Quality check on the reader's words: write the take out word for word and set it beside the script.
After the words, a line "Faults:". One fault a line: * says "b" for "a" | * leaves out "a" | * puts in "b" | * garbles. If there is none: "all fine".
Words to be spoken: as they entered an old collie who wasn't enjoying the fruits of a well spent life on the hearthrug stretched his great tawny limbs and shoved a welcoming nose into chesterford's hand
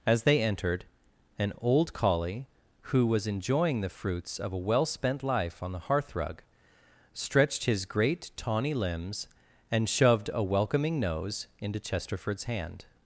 as they entered an old collie who was enjoying the fruits of a well spent life on the hearthrug stretched his great tawny limbs and shoved a welcoming nose into chesterford's hand
Faults:
* says "was" for "wasn't"